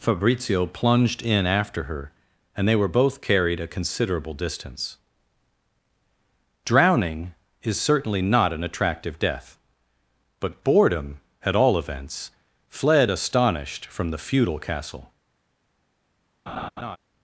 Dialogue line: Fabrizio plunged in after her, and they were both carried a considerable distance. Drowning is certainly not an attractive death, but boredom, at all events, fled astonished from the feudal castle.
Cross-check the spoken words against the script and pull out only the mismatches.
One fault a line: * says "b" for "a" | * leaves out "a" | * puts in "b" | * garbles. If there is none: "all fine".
all fine